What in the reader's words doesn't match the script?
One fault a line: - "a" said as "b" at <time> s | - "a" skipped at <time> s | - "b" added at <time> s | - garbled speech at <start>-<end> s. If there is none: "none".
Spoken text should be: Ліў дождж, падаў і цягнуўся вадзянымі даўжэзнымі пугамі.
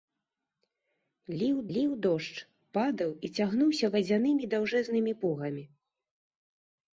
- "ліў" added at 1.8 s